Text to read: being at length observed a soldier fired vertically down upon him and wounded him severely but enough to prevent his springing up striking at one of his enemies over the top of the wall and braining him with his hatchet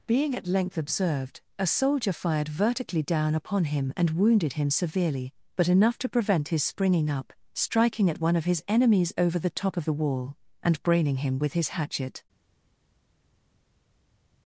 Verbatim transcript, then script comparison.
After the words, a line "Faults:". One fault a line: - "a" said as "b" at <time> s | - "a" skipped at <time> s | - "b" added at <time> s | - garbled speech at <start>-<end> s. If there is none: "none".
being at length observed a soldier fired vertically down upon him and wounded him severely but enough to prevent his springing up striking at one of his enemies over the top of the wall and braining him with his hatchet
Faults:
none